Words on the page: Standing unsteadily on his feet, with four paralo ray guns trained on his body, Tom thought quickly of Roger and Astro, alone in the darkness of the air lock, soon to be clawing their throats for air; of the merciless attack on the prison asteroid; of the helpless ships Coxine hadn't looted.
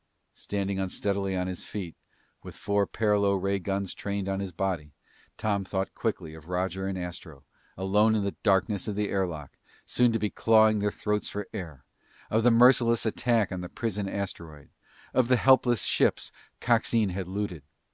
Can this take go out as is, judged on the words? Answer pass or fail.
fail